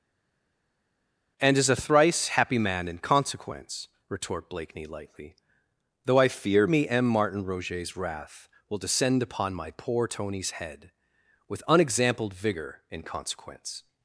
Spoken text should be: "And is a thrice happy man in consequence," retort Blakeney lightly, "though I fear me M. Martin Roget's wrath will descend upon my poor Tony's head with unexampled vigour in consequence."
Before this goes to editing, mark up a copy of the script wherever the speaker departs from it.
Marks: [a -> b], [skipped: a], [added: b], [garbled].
"And is a thrice happy man in consequence," retort Blakeney lightly, "though I fear me M. Martin Roget's wrath will descend upon my poor Tony's head with unexampled vigour in consequence."